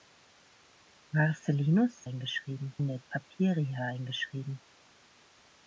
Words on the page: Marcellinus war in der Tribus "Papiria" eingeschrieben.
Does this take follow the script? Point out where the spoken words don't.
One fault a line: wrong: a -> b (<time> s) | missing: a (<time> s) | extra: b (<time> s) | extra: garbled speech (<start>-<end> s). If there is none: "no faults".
wrong: war -> eingeschrieben (2.1 s)
missing: Tribus (3.0 s)